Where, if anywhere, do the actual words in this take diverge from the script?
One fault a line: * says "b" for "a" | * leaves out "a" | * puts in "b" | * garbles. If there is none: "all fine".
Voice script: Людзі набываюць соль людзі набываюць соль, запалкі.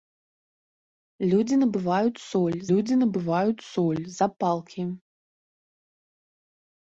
all fine